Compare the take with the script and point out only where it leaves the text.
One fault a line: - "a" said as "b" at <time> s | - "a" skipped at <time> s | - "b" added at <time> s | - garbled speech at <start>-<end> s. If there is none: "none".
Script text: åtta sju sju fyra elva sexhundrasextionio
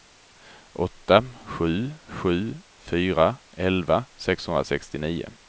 none